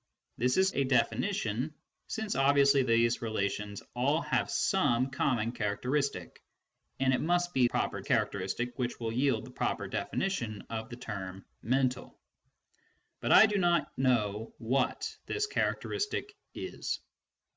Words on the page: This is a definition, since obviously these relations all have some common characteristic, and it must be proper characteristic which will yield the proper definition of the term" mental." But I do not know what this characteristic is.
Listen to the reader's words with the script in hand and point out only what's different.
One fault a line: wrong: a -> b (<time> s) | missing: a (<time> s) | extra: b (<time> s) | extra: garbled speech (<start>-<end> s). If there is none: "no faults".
no faults